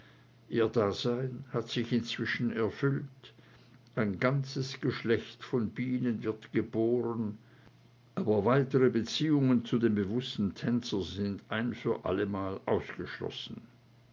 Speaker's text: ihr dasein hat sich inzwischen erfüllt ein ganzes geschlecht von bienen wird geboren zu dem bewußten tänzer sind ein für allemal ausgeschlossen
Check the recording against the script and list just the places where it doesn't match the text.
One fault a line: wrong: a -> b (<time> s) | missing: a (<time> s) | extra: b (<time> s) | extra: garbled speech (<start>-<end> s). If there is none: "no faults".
extra: aber weitere beziehungen (8.2 s)